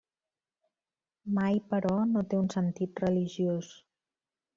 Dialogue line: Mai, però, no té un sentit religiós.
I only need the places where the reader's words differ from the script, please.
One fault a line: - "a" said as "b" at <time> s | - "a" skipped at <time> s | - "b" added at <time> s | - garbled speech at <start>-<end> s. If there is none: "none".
none